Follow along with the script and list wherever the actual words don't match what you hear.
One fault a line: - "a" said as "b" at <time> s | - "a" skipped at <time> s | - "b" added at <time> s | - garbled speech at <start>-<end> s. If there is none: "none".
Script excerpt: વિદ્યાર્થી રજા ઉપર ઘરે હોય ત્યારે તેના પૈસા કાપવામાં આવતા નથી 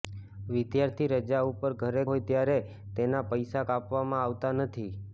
none